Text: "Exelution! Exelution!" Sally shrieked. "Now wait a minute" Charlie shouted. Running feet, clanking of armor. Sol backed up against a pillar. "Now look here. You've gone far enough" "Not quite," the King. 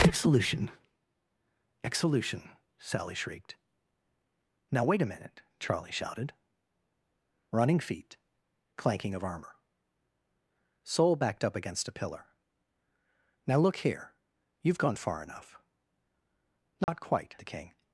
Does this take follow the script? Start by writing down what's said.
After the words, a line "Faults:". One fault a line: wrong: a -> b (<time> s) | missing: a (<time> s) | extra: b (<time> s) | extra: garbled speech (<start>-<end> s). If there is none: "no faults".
"Exelution! Exelution!" Sally shrieked. "Now wait a minute" Charlie shouted. Running feet, clanking of armor. Sol backed up against a pillar. "Now look here. You've gone far enough" "Not quite," the King.
Faults:
no faults